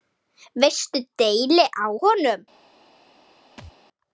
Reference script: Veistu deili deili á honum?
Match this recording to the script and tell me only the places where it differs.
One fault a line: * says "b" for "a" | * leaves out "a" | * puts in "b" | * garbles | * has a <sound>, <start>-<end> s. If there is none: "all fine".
* leaves out "deili"
* has a thud, 3.6-3.7 s